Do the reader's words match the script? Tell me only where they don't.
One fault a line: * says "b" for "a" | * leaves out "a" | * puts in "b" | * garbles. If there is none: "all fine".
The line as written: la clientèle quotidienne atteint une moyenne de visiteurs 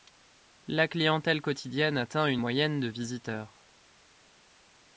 all fine